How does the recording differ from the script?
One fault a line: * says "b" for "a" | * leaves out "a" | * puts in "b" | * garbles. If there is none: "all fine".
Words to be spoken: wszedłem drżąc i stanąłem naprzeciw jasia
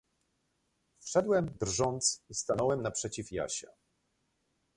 all fine